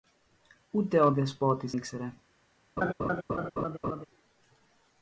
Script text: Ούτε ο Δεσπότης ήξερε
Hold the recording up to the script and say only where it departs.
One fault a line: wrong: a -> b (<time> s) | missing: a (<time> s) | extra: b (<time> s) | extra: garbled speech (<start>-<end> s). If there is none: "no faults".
no faults